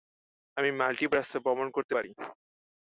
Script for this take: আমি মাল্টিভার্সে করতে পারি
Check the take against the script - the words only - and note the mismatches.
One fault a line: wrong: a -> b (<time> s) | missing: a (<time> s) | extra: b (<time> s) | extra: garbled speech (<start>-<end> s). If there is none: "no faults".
extra: ভ্রমণ (1.4 s)